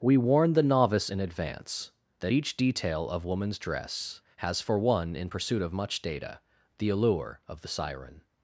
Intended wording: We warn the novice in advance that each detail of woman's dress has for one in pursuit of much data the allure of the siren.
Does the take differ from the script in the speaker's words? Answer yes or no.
no